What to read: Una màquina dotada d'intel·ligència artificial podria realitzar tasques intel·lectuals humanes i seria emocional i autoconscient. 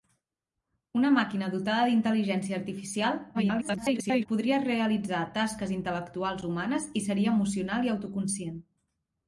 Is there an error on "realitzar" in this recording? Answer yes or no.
no